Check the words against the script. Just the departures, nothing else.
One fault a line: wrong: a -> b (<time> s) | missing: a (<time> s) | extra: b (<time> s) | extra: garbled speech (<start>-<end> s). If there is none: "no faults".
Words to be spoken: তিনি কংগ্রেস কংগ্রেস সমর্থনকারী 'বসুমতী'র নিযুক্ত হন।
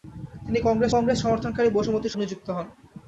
no faults